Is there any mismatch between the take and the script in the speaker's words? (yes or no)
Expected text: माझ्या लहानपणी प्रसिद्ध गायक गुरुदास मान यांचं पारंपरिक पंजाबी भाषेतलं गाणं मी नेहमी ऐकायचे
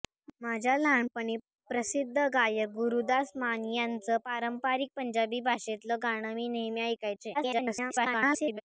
yes